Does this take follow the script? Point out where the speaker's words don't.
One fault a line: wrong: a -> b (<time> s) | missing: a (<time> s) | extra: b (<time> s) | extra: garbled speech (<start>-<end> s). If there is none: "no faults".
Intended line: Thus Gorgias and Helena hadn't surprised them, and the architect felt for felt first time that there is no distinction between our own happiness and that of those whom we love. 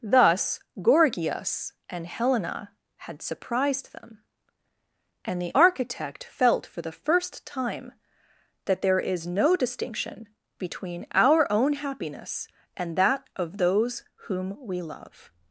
wrong: hadn't -> had (3.1 s)
wrong: felt -> the (6.8 s)